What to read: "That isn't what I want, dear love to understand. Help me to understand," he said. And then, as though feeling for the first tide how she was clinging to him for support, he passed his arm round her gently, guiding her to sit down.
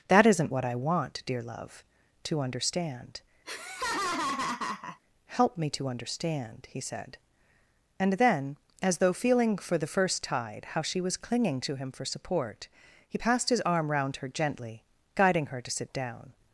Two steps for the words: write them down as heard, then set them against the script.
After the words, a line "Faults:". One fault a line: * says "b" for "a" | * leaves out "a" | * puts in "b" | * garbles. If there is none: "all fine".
"That isn't what I want, dear love to understand. Help me to understand," he said. And then, as though feeling for the first tide how she was clinging to him for support, he passed his arm round her gently, guiding her to sit down.
Faults:
all fine